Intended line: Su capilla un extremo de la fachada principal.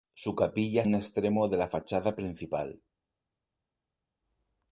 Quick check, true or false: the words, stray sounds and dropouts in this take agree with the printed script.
true